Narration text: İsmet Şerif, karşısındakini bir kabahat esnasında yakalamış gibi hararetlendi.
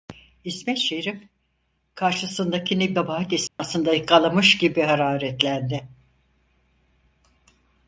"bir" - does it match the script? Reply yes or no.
no